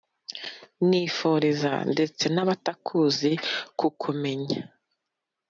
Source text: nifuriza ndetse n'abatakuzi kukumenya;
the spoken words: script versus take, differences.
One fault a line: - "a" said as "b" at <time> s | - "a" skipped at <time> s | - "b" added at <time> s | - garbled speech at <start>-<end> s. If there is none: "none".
none